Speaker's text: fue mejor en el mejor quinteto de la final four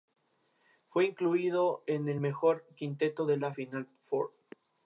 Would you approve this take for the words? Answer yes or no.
no